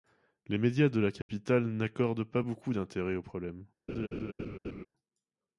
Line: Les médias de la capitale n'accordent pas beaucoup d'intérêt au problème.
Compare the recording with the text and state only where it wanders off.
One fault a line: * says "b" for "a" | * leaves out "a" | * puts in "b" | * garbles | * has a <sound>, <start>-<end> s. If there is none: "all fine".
* has a dropout, 1.2-1.3 s
* has a laugh, 3.9-4.9 s